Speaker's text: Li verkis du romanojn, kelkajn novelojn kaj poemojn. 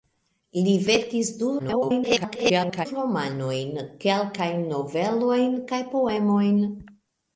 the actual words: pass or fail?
fail